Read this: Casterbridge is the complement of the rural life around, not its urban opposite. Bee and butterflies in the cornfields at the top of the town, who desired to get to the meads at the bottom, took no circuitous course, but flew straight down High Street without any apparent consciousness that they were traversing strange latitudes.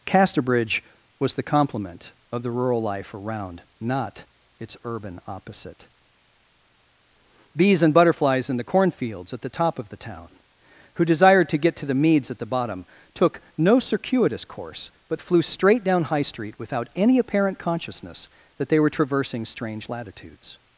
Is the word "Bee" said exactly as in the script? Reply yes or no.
no